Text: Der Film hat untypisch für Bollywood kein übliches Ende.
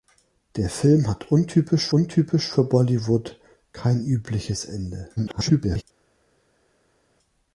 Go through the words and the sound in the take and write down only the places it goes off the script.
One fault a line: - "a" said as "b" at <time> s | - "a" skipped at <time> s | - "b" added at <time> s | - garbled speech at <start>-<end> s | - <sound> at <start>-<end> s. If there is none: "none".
- "untypisch" added at 1.9 s
- garbled speech at 5.2-5.8 s